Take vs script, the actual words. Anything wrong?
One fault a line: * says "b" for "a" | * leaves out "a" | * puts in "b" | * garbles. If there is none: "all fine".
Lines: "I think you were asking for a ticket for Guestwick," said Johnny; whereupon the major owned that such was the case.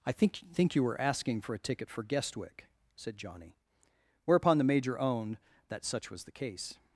* puts in "think"